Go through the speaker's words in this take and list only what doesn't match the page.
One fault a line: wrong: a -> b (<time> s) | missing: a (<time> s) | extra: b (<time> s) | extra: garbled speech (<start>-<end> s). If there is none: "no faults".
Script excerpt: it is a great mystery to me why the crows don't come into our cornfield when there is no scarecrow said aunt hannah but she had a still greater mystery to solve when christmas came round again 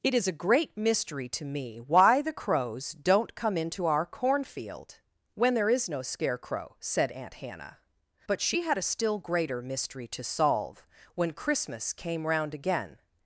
no faults